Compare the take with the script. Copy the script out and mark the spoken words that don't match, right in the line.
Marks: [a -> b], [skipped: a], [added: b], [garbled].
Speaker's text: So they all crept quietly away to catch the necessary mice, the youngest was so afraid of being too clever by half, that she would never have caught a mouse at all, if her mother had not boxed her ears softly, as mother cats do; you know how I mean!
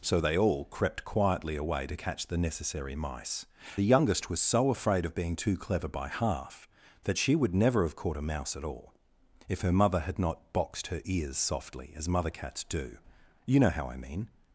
So they all crept quietly away to catch the necessary mice, the youngest was so afraid of being too clever by half, that she would never have caught a mouse at all, if her mother had not boxed her ears softly, as mother cats do; you know how I mean!